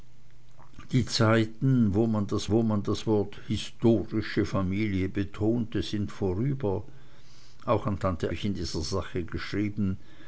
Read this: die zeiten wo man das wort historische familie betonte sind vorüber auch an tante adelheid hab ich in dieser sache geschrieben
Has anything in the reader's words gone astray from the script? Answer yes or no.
yes